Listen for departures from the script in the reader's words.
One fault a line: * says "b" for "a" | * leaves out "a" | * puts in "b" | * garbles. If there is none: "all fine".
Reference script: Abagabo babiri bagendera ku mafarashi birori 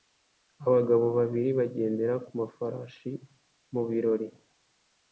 * puts in "mu"